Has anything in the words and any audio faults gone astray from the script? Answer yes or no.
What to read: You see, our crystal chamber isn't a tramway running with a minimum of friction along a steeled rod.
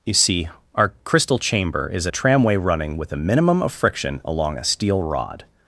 yes